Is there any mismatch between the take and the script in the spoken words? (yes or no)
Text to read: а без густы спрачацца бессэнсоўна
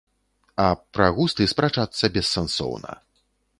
yes